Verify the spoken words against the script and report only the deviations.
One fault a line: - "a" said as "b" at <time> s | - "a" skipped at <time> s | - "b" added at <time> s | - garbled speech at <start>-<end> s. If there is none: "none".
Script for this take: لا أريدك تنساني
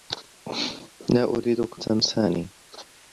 none